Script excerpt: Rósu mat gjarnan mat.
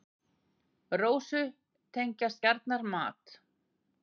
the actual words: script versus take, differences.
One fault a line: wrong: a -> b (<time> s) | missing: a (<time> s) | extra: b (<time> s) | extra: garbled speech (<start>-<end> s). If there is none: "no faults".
wrong: mat -> tengjast (2.0 s)